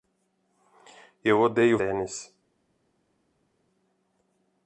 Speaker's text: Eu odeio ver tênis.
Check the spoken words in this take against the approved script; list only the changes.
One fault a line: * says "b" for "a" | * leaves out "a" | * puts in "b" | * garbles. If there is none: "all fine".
* leaves out "ver"